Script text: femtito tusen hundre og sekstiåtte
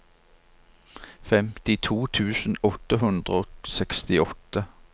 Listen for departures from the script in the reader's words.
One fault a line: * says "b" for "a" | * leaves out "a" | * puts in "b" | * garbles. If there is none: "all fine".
* puts in "åtte"